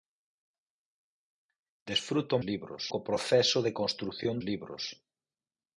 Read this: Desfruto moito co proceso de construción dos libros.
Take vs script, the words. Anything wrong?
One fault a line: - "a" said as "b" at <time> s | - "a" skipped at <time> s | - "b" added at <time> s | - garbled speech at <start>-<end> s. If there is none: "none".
- "moito" said as "libros" at 2.5 s
- "dos" skipped at 4.3 s